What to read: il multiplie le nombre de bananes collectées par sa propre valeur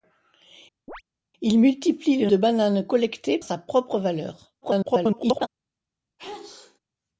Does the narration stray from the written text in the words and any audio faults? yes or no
yes